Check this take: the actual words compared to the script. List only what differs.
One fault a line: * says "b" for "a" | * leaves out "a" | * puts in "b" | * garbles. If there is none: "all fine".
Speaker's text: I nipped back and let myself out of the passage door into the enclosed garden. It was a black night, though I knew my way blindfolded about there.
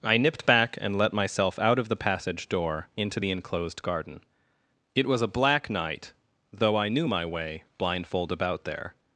* says "blindfold" for "blindfolded"